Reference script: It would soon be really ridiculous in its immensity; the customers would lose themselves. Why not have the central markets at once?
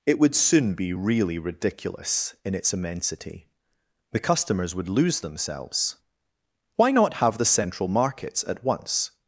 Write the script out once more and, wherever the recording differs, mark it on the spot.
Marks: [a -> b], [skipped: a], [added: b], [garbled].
It would soon be really ridiculous in its immensity; the customers would lose themselves. Why not have the central markets at once?